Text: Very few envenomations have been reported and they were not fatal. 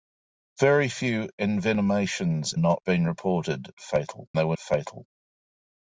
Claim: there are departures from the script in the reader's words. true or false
true